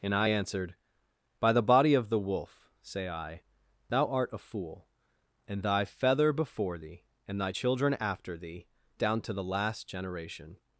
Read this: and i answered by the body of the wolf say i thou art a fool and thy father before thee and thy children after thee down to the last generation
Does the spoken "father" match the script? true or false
false